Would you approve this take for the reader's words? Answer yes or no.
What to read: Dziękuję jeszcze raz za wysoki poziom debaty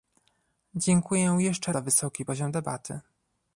no